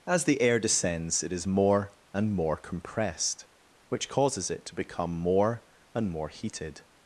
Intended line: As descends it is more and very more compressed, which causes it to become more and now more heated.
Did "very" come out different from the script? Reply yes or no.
yes